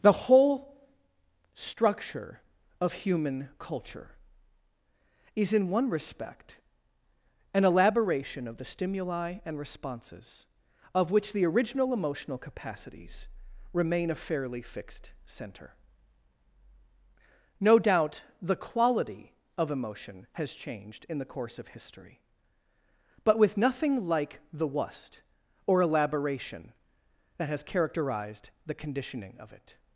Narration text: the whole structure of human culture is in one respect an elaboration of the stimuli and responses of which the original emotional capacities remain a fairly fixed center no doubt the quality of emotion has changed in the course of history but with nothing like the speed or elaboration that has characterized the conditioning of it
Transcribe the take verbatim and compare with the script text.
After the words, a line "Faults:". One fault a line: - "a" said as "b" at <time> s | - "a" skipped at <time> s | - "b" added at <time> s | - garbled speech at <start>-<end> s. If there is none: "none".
the whole structure of human culture is in one respect an elaboration of the stimuli and responses of which the original emotional capacities remain a fairly fixed center no doubt the quality of emotion has changed in the course of history but with nothing like the wust or elaboration that has characterized the conditioning of it
Faults:
- "speed" said as "wust" at 24.7 s